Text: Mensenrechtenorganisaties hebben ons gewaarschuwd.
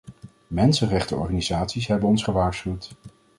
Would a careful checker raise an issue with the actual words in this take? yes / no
no